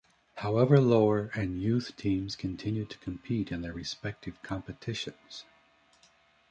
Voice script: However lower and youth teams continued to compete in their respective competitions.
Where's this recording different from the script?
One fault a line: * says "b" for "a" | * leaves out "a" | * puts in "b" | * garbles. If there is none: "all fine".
all fine